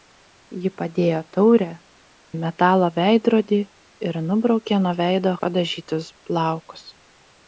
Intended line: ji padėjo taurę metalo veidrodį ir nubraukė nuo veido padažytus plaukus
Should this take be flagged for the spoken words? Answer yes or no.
no